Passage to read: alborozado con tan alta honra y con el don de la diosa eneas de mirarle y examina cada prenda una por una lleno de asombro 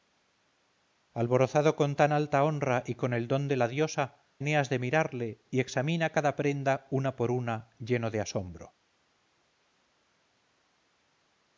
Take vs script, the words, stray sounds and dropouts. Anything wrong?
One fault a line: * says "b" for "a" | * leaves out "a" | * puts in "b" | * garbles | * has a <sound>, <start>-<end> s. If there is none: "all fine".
all fine